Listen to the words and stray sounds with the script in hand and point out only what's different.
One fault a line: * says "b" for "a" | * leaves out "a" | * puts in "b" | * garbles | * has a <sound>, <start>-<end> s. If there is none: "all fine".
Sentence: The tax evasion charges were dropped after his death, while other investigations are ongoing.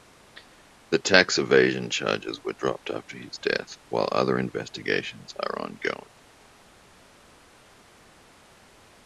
all fine